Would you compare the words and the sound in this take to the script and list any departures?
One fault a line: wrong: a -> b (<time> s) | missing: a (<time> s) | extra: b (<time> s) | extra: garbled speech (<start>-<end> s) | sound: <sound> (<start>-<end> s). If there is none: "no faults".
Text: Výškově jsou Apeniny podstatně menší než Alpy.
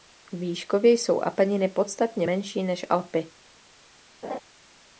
sound: laugh (4.2-4.4 s)